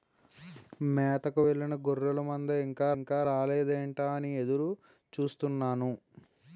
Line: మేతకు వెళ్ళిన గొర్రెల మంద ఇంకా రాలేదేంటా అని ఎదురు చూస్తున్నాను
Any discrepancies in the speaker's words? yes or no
yes